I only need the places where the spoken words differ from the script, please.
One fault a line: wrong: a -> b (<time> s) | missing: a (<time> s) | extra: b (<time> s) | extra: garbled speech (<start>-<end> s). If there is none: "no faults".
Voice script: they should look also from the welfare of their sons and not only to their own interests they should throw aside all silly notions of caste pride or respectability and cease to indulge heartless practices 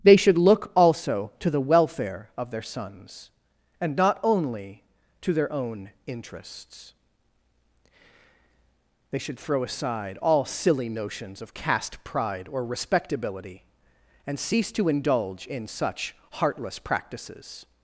wrong: from -> to (1.4 s)
extra: in such (15.5 s)